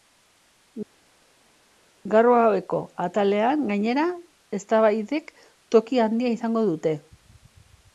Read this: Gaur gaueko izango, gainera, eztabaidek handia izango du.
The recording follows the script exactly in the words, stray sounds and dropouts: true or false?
false